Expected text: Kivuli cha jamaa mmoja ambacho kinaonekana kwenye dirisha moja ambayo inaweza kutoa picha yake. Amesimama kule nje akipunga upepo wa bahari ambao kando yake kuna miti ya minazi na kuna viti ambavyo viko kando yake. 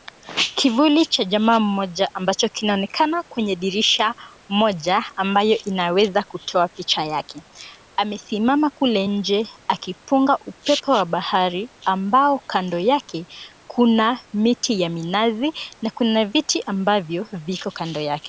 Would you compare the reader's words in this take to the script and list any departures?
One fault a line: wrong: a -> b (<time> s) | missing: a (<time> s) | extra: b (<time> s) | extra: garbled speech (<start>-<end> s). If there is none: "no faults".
no faults